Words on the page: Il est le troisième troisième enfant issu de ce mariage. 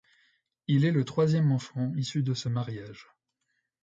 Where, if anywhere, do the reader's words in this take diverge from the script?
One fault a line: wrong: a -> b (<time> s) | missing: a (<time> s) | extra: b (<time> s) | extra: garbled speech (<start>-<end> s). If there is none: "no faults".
missing: troisième (1.5 s)